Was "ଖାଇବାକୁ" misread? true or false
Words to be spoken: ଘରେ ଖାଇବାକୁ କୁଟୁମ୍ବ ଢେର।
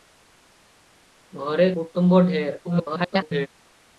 true